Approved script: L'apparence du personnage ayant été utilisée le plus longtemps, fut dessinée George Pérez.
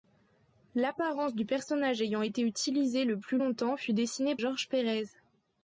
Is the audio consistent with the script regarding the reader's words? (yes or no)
yes